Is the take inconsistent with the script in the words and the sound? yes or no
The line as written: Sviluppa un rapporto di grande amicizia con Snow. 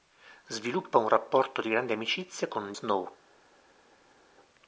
no